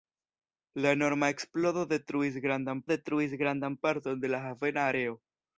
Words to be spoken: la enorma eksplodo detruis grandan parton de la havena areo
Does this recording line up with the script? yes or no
no